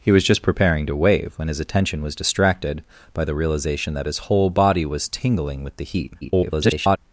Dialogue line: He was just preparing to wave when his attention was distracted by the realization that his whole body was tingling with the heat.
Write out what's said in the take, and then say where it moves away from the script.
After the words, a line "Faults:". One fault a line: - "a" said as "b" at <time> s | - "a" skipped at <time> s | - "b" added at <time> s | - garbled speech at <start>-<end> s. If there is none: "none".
He was just preparing to wave when his attention was distracted by the realization that his whole body was tingling with the heat. [garbled]
Faults:
- garbled speech at 6.2-7.0 s